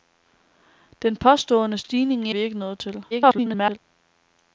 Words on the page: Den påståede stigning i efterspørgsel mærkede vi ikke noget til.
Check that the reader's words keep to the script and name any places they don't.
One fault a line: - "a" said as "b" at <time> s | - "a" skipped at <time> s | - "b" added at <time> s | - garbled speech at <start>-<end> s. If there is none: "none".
- "efterspørgsel mærkede" skipped at 2.4 s
- garbled speech at 3.1-3.8 s